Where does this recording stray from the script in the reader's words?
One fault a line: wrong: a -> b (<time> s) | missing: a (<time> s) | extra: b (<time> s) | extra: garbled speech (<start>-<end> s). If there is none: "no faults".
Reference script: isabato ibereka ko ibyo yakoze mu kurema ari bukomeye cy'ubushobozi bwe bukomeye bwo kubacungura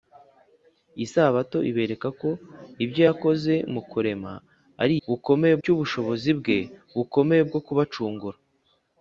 no faults